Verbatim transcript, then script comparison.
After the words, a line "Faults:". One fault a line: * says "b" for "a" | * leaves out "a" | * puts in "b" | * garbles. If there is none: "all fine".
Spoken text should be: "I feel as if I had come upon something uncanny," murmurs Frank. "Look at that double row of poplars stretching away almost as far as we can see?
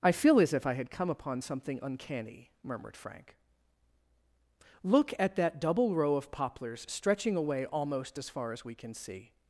"I feel as if I had come upon something uncanny," murmured Frank. "Look at that double row of poplars stretching away almost as far as we can see?
Faults:
* says "murmured" for "murmurs"